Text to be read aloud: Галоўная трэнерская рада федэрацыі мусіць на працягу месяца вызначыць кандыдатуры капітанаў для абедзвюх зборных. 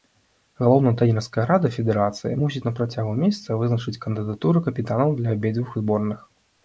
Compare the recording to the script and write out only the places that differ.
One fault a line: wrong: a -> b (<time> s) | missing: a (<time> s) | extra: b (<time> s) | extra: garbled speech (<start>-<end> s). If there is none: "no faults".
no faults